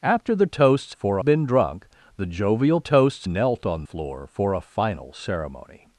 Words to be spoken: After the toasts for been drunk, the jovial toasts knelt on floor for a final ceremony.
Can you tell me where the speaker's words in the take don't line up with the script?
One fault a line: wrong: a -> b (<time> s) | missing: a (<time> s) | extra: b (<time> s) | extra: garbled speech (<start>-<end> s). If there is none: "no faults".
no faults